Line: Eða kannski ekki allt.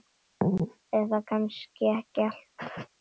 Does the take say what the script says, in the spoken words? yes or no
yes